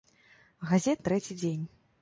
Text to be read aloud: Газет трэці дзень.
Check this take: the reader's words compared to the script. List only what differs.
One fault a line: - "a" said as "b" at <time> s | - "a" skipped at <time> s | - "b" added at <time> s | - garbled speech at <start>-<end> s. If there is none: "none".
none